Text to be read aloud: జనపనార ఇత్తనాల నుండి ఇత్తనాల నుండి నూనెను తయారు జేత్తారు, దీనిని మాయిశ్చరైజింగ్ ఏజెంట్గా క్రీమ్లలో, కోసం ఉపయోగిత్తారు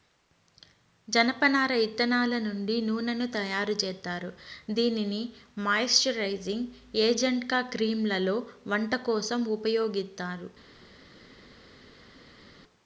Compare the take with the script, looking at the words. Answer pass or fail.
fail